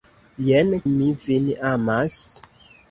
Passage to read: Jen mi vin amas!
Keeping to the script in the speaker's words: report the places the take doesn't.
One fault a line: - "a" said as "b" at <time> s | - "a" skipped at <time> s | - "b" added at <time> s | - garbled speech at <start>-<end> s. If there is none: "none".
none